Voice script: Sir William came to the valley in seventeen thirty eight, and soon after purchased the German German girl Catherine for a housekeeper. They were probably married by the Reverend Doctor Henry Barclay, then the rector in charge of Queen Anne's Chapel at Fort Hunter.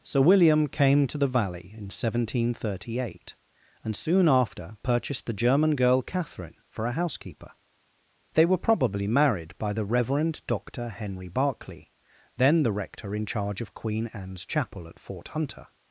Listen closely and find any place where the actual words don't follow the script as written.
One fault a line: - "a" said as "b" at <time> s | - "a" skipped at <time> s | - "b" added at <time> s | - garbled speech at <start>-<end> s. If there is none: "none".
- "German" skipped at 5.8 s